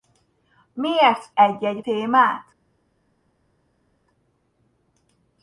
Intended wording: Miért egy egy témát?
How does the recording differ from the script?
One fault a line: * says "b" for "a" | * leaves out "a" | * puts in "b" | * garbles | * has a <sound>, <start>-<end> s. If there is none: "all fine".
all fine